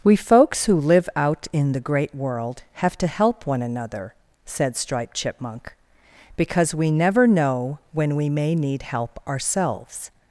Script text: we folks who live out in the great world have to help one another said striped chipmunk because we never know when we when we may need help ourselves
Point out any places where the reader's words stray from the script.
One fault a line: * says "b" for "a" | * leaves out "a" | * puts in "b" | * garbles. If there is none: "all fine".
* leaves out "when we"